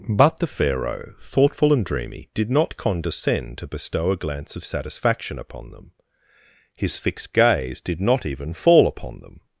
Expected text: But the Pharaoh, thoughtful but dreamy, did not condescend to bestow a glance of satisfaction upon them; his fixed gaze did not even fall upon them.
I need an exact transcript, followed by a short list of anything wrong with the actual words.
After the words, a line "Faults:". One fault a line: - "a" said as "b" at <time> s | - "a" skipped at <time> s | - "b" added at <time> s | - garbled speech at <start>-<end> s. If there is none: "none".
But the Pharaoh, thoughtful and dreamy, did not condescend to bestow a glance of satisfaction upon them; his fixed gaze did not even fall upon them.
Faults:
- "but" said as "and" at 1.7 s